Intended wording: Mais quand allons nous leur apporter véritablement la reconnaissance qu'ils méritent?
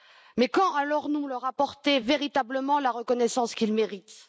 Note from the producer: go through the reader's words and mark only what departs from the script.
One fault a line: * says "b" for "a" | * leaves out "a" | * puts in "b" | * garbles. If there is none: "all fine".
all fine